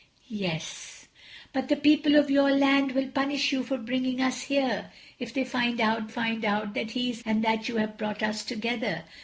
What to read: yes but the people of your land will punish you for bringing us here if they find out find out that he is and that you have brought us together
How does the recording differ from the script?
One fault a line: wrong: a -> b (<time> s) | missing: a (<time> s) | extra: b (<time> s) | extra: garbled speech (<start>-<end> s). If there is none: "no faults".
no faults